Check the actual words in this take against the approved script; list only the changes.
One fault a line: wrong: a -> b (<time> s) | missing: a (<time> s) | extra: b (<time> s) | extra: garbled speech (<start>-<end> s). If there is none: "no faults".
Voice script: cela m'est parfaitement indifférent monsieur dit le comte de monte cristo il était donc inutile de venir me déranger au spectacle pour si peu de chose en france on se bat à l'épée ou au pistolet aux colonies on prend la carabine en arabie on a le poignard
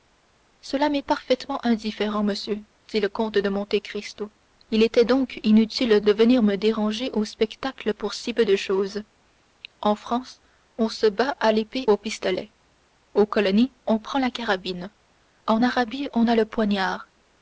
missing: ou (11.9 s)